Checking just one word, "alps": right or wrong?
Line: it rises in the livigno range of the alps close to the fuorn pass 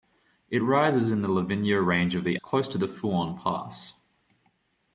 wrong